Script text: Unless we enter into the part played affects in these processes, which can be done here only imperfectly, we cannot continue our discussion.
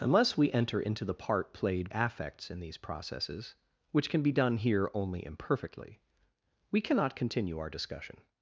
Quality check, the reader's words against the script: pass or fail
pass